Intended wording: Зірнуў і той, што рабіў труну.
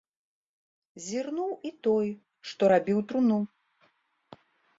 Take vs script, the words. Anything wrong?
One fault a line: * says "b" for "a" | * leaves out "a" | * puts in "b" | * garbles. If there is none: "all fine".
all fine